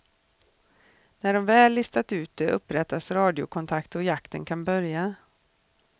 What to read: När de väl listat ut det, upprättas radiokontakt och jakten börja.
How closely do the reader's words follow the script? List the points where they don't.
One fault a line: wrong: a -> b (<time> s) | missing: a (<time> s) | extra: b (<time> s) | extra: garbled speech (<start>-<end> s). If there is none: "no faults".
extra: kan (4.5 s)